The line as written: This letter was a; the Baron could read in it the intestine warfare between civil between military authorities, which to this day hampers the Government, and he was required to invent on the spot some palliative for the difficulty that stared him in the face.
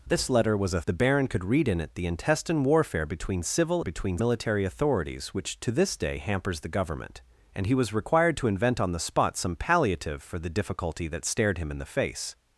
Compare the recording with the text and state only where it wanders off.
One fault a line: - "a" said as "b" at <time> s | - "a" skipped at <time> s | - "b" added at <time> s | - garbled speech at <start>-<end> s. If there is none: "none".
none